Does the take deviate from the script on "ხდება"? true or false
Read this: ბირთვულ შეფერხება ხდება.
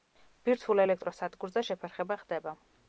false